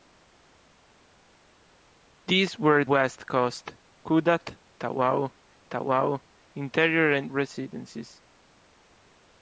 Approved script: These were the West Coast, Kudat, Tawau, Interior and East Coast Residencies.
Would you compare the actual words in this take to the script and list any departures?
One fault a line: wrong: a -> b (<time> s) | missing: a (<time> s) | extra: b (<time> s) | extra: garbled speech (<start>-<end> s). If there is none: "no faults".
missing: the (2.8 s)
extra: Tawau (5.7 s)
missing: East Coast (7.3 s)